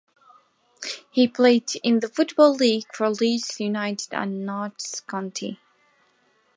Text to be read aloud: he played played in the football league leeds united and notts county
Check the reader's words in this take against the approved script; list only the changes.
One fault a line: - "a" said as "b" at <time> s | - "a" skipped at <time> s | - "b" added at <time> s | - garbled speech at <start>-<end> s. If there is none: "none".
- "played" skipped at 1.8 s
- "for" added at 2.9 s